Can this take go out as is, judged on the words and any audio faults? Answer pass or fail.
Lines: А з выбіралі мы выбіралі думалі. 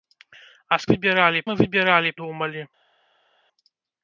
pass